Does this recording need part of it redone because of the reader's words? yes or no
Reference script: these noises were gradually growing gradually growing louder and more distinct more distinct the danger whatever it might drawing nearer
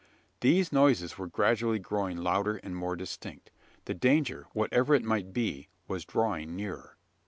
yes